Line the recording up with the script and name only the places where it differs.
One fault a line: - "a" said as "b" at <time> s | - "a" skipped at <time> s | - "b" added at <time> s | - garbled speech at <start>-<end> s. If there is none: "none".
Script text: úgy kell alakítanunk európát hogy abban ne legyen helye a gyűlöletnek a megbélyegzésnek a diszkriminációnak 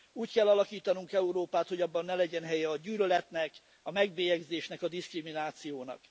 none